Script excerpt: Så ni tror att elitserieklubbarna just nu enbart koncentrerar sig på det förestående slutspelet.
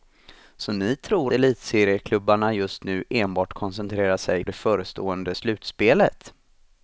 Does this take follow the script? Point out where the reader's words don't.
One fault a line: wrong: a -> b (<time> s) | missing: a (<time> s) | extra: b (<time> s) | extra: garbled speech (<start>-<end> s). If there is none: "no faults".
missing: att (1.3 s)
missing: på (4.5 s)